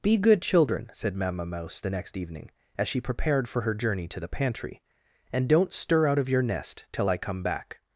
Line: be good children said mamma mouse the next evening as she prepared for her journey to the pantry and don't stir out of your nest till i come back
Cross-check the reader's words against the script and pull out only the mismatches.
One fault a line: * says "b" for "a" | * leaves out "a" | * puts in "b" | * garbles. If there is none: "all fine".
all fine